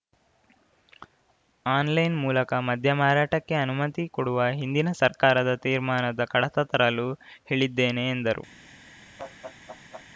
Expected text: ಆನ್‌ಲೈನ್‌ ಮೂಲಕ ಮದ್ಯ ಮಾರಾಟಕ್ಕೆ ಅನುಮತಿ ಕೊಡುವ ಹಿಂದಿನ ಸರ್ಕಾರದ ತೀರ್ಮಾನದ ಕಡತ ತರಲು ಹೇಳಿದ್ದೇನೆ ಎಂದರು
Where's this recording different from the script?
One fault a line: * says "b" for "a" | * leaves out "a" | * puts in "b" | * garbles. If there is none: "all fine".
all fine